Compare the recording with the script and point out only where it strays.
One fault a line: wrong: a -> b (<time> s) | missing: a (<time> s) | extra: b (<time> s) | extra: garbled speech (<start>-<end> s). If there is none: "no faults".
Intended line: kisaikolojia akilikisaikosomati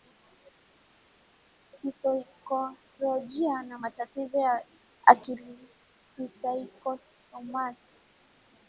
extra: na matatizo ya (3.6 s)